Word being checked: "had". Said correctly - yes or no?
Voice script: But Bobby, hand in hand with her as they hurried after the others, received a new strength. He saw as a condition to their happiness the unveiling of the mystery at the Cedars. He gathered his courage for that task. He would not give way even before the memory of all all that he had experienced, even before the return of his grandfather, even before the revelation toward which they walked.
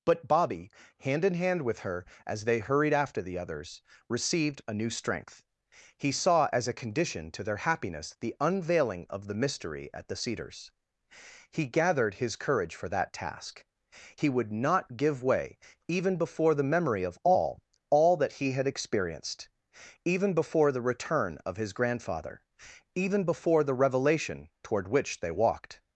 yes